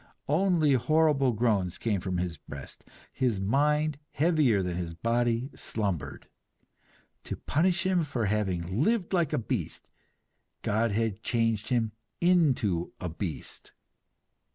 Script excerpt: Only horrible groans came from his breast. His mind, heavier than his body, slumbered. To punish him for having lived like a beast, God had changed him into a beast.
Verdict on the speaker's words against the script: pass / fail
pass